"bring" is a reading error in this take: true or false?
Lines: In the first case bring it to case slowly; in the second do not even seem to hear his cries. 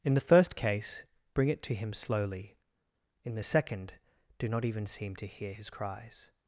false